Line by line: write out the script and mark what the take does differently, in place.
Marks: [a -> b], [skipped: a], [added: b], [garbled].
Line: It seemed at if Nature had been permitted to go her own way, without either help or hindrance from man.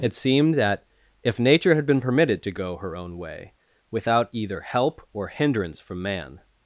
It seemed [at -> that] if Nature had been permitted to go her own way, without either help or hindrance from man.